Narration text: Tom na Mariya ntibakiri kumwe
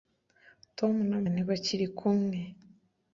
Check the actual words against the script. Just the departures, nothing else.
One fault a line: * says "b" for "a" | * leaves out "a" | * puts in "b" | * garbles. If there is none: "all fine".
* leaves out "Mariya"